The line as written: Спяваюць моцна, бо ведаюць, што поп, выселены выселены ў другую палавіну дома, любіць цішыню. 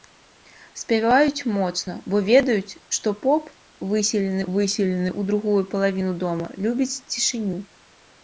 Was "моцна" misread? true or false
false